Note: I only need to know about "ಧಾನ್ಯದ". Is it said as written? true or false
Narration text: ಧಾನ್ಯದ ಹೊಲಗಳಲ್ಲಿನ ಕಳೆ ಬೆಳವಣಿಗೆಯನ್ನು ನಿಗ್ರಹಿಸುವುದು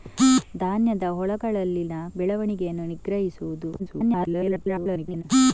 true